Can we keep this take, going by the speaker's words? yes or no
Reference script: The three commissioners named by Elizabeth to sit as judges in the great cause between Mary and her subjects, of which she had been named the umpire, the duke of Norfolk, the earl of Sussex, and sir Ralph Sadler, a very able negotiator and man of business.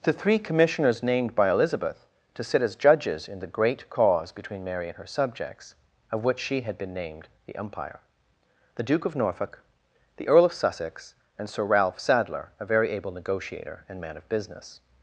yes